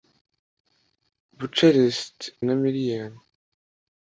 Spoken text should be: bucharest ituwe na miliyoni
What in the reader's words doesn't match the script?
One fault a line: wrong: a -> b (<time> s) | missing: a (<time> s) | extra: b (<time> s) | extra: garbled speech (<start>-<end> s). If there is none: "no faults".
missing: ituwe (2.2 s)